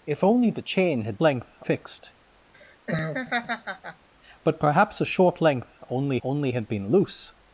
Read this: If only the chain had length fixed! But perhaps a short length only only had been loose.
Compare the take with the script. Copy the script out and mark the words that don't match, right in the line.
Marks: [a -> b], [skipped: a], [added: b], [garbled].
If only the chain had length fixed! But perhaps a short length only only had been loose.